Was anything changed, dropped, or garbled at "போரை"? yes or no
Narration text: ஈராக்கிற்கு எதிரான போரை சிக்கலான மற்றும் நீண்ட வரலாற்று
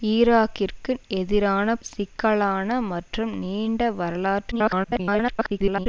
yes